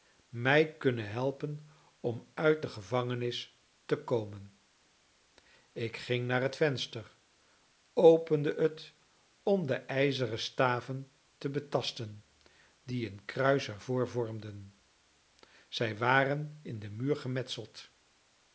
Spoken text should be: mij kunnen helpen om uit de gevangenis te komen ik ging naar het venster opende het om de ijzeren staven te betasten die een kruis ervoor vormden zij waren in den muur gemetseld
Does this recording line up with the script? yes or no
yes